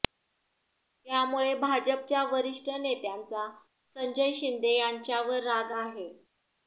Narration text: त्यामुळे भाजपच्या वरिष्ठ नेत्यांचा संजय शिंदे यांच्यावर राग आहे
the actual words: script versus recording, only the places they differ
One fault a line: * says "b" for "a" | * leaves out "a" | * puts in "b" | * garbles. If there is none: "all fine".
all fine